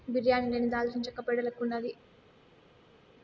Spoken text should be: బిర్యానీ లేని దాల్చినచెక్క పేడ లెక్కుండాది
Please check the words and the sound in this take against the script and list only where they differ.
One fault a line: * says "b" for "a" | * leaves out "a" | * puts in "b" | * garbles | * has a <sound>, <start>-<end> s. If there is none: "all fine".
all fine